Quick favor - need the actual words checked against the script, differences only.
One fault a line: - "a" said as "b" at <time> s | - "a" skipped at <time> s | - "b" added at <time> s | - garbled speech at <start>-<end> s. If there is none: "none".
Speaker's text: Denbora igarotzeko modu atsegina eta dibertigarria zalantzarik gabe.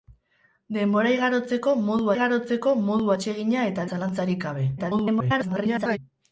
- "igarotzeko modu" added at 2.1 s
- "dibertigarria" skipped at 3.9 s
- garbled speech at 4.8-6.0 s